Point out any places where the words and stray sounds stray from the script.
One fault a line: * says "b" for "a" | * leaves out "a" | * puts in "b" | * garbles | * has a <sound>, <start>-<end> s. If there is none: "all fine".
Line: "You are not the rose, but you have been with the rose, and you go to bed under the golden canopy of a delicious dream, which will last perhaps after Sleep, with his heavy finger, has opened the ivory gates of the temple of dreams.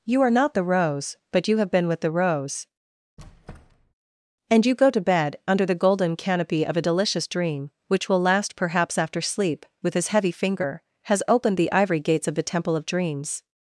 * has a squeak, 3.2-3.9 s